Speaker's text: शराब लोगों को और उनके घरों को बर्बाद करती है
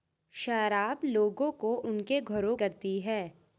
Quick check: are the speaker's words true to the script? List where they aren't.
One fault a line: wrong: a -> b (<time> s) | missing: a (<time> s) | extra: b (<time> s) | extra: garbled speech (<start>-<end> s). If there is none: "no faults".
missing: और (1.8 s)
missing: को बर्बाद (2.6 s)